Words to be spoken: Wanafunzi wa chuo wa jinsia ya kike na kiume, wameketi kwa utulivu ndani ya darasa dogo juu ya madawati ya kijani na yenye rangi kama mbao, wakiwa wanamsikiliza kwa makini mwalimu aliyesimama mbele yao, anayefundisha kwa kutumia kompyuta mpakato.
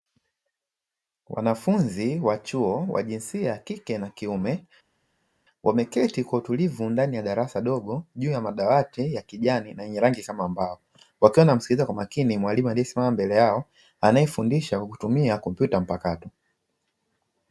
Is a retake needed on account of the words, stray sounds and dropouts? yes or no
no